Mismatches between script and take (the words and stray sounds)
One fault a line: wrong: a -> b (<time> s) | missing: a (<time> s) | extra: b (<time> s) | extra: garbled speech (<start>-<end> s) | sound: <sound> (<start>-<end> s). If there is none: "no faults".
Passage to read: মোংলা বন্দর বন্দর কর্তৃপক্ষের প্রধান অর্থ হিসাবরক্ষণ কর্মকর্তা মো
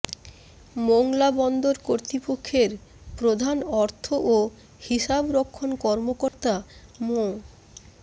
missing: বন্দর (1.8 s)
extra: ও (4.3 s)
sound: dropout (6.3-6.3 s)